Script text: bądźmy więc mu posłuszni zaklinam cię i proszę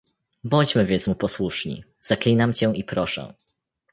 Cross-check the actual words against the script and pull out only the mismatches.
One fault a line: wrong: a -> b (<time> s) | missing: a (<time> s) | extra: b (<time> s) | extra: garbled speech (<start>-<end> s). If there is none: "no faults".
no faults